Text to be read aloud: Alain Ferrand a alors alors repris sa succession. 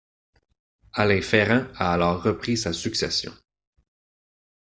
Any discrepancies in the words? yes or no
yes